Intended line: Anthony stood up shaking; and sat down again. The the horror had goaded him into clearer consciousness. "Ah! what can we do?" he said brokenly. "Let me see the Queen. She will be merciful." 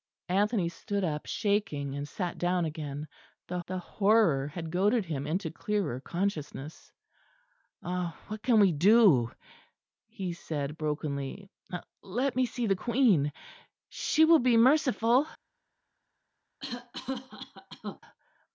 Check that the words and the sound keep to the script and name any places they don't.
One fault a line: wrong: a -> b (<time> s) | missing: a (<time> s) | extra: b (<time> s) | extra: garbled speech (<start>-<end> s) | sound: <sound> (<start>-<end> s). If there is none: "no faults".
sound: cough (16.6-18.0 s)